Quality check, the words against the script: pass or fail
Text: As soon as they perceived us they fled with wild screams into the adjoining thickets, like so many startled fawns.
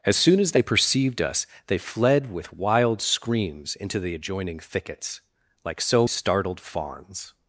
fail